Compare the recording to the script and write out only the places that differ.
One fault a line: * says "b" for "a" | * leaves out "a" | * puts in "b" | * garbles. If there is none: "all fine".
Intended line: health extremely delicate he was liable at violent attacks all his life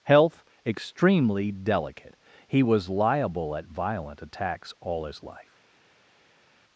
all fine